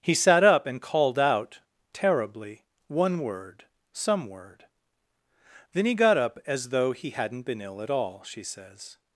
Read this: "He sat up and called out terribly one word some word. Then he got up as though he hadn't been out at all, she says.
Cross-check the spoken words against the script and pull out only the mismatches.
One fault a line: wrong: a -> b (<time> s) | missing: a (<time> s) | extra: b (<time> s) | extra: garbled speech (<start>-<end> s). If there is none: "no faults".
wrong: out -> ill (7.6 s)